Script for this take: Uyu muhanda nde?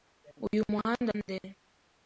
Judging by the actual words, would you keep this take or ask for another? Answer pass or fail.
pass